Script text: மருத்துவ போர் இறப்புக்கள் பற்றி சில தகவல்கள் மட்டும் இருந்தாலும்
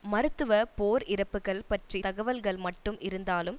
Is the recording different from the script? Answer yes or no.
yes